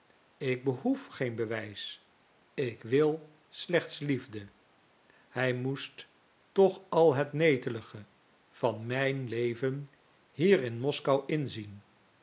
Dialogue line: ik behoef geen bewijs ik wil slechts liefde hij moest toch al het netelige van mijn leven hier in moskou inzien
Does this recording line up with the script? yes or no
yes